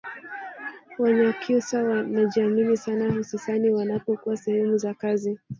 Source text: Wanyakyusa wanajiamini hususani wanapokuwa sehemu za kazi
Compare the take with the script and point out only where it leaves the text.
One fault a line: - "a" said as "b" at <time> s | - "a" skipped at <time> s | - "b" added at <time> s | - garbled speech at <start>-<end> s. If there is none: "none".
- "sana" added at 2.8 s